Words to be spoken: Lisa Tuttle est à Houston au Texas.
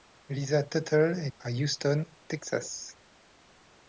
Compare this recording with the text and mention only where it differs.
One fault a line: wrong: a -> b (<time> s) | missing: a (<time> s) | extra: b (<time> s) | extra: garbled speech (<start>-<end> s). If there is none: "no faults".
no faults